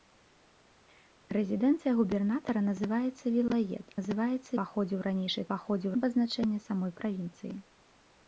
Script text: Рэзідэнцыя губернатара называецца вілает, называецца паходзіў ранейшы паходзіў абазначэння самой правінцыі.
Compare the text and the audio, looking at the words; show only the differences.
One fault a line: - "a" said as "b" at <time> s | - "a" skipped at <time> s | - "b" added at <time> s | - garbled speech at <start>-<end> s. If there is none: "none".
none